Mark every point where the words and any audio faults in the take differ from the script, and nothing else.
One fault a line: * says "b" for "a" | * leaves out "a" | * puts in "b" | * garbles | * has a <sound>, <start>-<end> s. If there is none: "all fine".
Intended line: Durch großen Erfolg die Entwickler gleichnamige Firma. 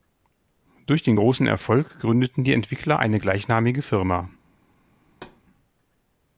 * puts in "den"
* puts in "gründeten"
* puts in "eine"
* has a thud, 5.1-5.4 s